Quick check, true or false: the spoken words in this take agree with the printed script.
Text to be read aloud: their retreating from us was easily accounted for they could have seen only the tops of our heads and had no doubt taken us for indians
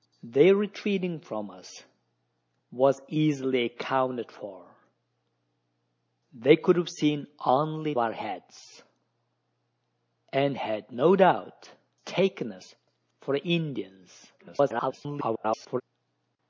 false